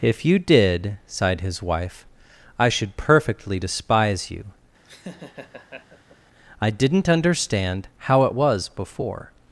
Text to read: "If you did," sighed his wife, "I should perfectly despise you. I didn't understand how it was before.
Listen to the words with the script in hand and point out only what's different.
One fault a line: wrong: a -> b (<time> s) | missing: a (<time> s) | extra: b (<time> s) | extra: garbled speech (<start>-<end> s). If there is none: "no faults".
no faults